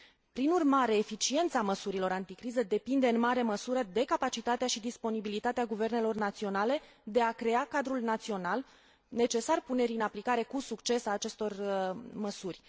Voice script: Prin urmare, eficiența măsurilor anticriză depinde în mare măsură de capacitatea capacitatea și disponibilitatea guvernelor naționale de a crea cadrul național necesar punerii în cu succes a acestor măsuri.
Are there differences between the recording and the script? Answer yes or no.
yes